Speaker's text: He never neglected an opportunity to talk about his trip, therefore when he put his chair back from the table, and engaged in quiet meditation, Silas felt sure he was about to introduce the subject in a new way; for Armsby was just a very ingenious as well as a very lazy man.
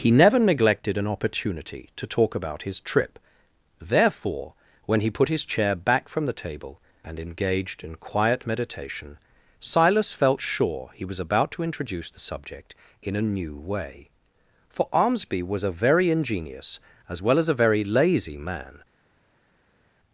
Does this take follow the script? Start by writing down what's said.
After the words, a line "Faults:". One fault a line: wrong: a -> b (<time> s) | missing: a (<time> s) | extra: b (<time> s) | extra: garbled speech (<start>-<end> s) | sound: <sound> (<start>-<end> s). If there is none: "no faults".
He never neglected an opportunity to talk about his trip, therefore when he put his chair back from the table, and engaged in quiet meditation, Silas felt sure he was about to introduce the subject in a new way; for Armsby was a very ingenious as well as a very lazy man.
Faults:
missing: just (15.6 s)